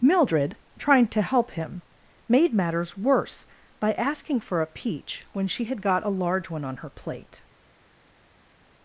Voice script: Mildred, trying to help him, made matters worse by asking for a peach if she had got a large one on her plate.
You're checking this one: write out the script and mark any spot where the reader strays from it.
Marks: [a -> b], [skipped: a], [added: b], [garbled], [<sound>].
Mildred, trying to help him, made matters worse by asking for a peach [if -> when] she had got a large one on her plate.